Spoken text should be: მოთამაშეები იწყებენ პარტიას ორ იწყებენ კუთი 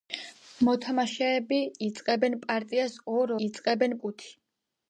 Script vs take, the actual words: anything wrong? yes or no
no